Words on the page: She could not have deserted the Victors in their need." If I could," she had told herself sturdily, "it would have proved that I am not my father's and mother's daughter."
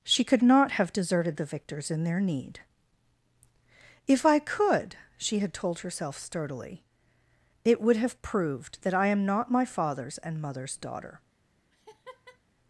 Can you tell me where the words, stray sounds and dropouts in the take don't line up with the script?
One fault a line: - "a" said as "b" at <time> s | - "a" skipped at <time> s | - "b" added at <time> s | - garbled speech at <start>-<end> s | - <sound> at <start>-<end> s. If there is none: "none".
- laugh at 11.7-12.4 s